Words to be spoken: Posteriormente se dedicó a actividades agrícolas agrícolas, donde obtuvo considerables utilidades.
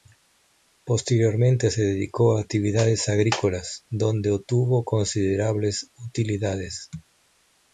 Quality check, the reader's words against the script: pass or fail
fail